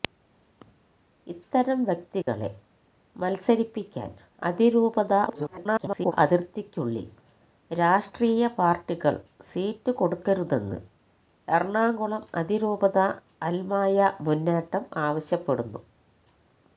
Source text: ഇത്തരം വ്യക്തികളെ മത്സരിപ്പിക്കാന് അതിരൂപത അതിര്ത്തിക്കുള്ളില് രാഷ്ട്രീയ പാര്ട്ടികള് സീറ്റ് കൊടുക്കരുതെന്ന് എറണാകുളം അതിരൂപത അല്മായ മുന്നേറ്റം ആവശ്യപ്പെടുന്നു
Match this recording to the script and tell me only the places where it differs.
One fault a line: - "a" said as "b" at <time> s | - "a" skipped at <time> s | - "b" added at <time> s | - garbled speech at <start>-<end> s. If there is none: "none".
- garbled speech at 5.3-6.1 s